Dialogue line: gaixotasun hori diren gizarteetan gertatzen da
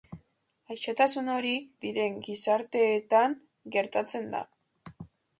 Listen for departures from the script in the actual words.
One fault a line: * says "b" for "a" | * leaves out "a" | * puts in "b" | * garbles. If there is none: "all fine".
all fine